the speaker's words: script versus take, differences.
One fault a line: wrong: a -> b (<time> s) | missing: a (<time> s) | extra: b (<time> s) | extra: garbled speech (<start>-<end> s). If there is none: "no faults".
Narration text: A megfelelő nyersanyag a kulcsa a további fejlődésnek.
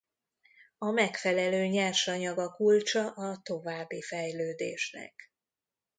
no faults